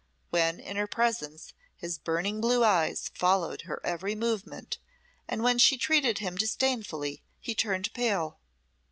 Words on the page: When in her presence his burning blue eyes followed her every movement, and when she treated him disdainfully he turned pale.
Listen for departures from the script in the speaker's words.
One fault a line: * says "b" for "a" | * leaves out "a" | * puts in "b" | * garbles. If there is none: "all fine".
all fine